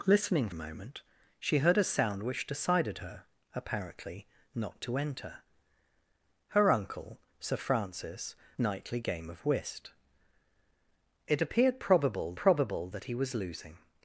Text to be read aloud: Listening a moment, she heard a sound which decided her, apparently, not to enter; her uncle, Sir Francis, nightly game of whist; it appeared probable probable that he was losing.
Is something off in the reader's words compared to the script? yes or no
no